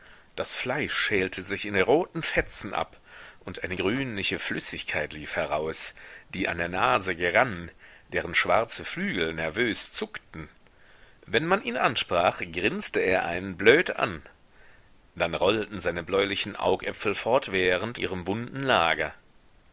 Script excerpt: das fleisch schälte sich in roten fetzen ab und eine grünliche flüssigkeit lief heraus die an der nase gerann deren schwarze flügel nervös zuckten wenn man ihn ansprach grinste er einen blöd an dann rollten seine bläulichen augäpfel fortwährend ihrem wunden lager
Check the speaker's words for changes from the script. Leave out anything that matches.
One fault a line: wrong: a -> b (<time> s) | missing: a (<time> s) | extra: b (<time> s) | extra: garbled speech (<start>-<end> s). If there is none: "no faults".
no faults